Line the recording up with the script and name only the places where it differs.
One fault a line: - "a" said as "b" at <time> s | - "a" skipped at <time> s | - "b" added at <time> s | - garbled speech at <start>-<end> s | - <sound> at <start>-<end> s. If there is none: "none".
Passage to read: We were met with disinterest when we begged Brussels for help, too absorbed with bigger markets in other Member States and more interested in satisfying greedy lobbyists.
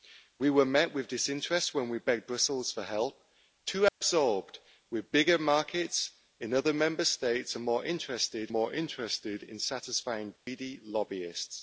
- dropout at 3.9-4.0 s
- "more interested" added at 8.5 s
- dropout at 10.4-10.5 s